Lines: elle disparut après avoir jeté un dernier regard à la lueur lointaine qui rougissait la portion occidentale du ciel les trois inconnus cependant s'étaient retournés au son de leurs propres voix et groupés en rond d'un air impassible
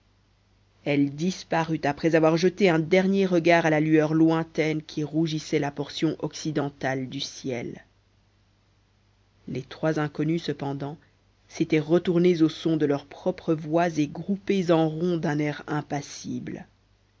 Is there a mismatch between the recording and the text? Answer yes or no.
no